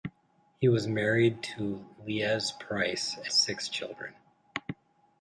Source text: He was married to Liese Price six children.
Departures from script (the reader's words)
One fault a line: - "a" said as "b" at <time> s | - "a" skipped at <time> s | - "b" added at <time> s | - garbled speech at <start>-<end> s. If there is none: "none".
none